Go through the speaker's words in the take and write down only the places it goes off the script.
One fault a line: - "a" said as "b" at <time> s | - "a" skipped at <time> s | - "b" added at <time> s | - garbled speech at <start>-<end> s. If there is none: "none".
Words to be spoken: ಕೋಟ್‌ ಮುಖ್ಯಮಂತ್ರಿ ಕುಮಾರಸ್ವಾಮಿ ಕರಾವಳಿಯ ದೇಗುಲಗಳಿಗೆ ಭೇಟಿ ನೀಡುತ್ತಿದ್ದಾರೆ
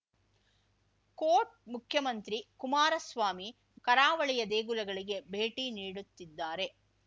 none